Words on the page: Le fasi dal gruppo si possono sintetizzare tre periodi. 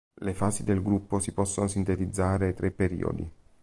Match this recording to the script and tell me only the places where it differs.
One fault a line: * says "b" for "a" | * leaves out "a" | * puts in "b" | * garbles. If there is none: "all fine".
* says "del" for "dal"